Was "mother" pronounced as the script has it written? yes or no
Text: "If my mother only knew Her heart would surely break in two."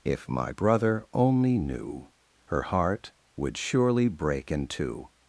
no